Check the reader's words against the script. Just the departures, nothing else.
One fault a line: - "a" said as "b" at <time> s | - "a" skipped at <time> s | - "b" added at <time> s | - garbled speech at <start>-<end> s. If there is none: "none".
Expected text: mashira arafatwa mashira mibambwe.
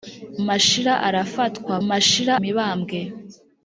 none